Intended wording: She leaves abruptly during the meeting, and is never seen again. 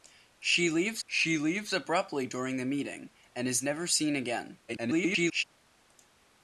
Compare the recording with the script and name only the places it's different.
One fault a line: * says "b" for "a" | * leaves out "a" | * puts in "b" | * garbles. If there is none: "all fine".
* puts in "she leaves"
* garbles